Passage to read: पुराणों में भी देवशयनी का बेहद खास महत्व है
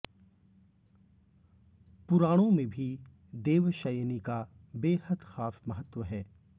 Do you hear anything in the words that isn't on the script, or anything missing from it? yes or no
no